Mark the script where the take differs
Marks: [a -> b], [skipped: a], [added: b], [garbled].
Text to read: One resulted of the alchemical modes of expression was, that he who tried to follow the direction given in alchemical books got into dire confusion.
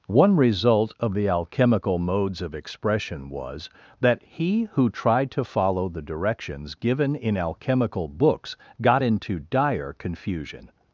One [resulted -> result] of the alchemical modes of expression was, that he who tried to follow the [direction -> directions] given in alchemical books got into dire confusion.